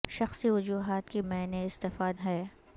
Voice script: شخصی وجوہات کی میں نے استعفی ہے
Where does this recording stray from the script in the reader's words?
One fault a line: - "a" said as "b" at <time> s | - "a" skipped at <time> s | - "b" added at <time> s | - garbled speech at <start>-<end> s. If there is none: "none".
none